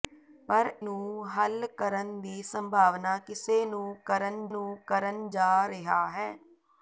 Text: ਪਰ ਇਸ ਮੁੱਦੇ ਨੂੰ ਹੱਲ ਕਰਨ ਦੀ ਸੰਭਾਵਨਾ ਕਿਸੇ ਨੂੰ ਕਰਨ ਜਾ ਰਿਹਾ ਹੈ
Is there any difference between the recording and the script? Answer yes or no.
yes